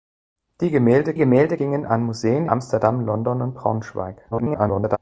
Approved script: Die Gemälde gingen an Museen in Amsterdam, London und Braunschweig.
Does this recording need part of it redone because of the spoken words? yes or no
yes